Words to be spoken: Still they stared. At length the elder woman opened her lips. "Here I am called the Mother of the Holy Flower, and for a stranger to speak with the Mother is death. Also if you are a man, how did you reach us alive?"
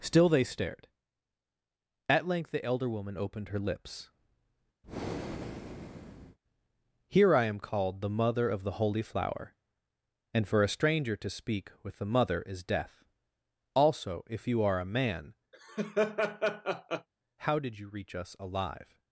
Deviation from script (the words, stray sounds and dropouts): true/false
true